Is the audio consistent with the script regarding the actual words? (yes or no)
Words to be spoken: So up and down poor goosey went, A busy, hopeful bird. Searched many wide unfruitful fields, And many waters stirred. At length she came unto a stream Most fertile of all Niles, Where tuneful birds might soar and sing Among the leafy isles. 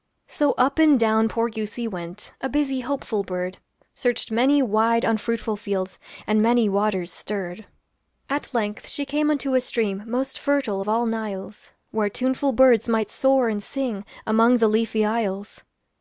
yes